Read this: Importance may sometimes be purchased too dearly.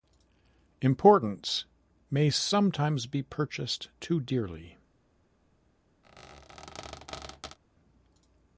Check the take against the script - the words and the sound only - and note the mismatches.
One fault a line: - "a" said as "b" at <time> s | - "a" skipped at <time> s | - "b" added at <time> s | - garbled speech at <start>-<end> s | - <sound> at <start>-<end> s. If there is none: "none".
- squeak at 6.0-7.6 s